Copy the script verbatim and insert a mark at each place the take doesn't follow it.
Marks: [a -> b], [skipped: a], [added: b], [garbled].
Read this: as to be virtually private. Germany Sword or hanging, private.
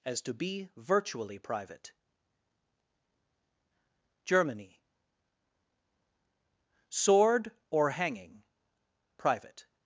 as to be virtually private. Germany Sword or hanging, private.